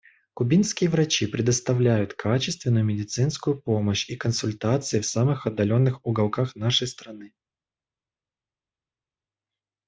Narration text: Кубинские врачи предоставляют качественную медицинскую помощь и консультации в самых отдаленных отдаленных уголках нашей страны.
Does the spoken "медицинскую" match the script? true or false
true